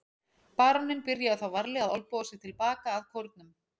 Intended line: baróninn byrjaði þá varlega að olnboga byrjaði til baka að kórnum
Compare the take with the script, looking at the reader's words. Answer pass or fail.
fail